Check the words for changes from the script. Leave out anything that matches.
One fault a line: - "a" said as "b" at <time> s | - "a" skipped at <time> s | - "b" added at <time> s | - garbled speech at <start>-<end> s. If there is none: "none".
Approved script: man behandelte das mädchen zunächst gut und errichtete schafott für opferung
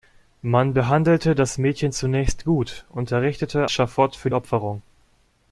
none